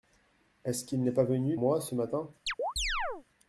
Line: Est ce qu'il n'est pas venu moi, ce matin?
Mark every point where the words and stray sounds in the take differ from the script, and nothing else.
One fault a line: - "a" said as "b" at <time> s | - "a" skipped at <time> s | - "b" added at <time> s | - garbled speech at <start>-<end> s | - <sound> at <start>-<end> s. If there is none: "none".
- chirp at 2.5-3.2 s